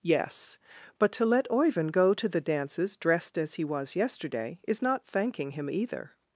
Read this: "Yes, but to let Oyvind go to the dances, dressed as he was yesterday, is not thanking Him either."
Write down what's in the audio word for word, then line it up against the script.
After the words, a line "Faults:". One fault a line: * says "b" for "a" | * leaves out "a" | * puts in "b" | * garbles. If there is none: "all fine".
"Yes, but to let Oyvind go to the dances, dressed as he was yesterday, is not thanking Him either."
Faults:
all fine